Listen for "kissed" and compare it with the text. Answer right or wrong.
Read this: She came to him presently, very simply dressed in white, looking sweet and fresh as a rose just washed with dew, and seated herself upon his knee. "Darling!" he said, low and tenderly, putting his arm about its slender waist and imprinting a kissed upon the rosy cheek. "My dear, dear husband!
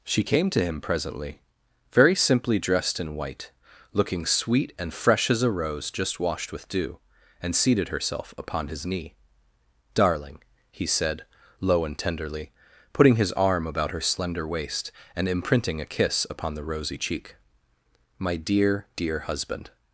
wrong